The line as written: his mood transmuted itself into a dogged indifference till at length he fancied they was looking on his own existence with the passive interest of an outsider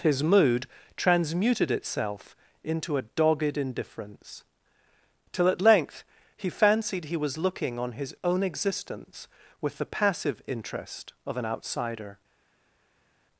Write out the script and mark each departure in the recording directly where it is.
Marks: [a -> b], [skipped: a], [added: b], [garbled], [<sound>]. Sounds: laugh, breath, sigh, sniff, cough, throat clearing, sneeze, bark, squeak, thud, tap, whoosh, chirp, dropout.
his mood transmuted itself into a dogged indifference till at length he fancied [they -> he] was looking on his own existence with the passive interest of an outsider